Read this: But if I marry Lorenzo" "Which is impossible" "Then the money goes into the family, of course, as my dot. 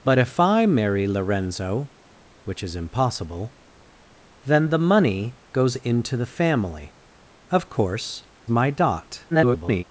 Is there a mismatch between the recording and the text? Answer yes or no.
yes